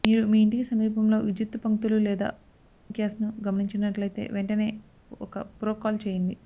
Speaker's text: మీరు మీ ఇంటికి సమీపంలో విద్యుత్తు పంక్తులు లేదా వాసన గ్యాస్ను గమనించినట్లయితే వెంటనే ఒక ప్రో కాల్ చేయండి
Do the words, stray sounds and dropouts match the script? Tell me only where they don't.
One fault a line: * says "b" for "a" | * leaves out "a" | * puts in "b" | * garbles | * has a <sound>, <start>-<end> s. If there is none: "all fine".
* leaves out "వాసన"